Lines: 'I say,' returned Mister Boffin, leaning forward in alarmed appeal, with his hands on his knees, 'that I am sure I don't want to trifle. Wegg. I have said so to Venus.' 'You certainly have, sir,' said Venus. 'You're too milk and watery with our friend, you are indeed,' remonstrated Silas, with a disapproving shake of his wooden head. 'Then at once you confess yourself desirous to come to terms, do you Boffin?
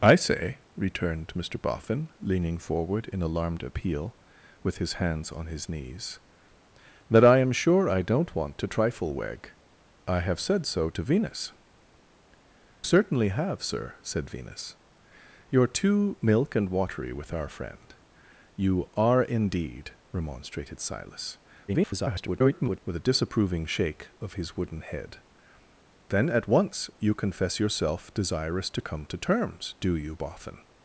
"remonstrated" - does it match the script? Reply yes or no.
yes